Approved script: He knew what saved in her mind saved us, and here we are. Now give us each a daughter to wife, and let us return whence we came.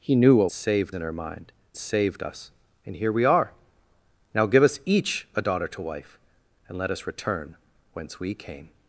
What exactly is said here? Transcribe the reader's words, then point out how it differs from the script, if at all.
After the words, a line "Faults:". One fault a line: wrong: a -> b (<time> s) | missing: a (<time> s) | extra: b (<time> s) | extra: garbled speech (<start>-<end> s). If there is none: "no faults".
He knew what saved in her mind saved us, and here we are. Now give us each a daughter to wife, and let us return whence we came.
Faults:
no faults